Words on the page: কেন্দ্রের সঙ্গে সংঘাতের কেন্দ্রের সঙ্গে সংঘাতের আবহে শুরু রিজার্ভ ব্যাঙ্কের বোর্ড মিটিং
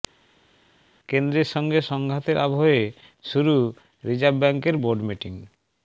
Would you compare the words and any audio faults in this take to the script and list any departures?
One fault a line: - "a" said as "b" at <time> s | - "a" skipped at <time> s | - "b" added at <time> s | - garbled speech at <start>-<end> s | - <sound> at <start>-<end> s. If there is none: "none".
- "কেন্দ্রের সঙ্গে সংঘাতের" skipped at 2.4 s